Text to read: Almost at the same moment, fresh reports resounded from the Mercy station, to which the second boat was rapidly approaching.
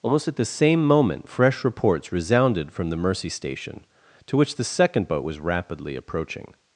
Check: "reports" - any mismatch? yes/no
no